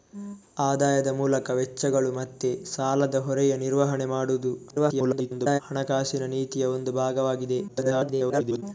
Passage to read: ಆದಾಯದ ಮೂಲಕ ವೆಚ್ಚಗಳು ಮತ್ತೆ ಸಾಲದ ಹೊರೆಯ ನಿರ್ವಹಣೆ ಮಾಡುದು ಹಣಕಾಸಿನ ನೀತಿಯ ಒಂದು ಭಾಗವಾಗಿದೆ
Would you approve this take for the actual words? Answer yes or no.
no